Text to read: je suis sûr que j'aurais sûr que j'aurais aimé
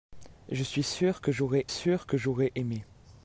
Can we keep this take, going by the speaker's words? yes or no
yes